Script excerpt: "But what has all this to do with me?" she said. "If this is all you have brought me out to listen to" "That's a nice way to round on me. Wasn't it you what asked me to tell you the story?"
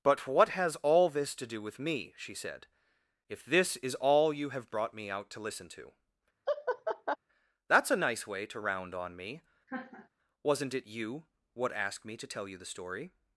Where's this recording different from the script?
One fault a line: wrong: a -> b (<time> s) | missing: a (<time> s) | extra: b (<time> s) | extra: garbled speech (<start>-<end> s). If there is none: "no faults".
no faults